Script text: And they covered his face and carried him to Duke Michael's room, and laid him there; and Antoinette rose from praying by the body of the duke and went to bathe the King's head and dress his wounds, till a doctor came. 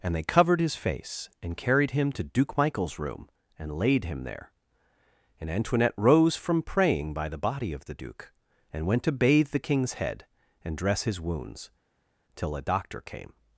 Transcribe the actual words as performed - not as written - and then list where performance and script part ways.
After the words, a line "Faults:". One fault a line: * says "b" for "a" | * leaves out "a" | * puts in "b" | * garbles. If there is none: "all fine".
And they covered his face and carried him to Duke Michael's room, and laid him there; and Antoinette rose from praying by the body of the duke and went to bathe the King's head and dress his wounds, till a doctor came.
Faults:
all fine